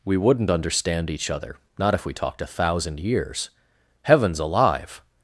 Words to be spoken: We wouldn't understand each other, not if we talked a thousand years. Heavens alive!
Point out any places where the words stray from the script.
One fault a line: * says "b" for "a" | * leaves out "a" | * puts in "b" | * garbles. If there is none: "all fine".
all fine